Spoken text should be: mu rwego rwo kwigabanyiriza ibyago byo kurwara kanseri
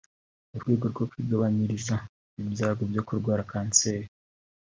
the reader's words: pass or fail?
pass